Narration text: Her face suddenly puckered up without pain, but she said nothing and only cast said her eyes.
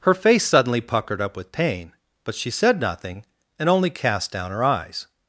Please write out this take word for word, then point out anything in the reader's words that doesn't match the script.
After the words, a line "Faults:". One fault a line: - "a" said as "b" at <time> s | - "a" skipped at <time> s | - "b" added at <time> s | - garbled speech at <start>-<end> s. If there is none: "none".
Her face suddenly puckered up with pain, but she said nothing and only cast down her eyes.
Faults:
- "without" said as "with" at 1.4 s
- "said" said as "down" at 4.3 s